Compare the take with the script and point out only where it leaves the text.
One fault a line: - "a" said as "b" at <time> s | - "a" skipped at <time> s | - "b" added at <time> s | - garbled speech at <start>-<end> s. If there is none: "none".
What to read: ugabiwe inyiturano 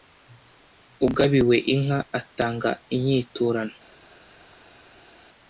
- "inka atanga" added at 1.7 s